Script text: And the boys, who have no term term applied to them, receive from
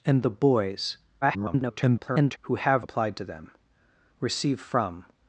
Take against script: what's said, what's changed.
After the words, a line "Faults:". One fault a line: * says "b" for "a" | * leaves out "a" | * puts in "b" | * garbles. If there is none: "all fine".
And the boys, [garbled] who have applied to them, receive from
Faults:
* garbles
* leaves out "no term term"